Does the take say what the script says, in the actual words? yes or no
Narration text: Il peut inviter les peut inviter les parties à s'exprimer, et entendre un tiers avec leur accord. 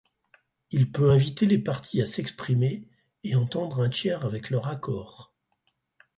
no